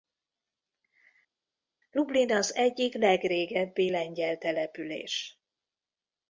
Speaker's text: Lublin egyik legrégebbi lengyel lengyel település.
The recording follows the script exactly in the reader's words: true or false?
false